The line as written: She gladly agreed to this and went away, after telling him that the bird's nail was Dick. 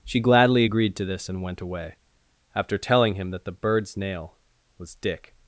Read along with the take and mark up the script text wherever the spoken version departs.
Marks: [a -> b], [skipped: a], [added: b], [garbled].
She gladly agreed to this and went away, after telling him that the bird's nail was Dick.